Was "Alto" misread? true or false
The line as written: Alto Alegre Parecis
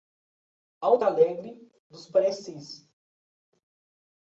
false